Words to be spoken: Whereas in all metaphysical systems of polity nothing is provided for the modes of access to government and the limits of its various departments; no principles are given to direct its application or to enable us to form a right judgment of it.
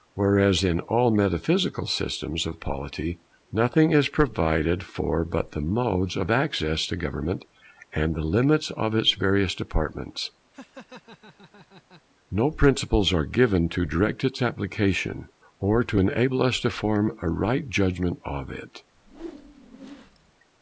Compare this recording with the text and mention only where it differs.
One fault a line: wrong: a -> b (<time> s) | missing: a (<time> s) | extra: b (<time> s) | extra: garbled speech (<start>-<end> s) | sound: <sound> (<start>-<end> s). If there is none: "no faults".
extra: but (5.2 s)
sound: laugh (10.5-12.0 s)
sound: whoosh (18.9-20.3 s)